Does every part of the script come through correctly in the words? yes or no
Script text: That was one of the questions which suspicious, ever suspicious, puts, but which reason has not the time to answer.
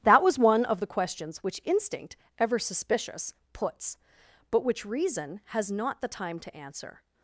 no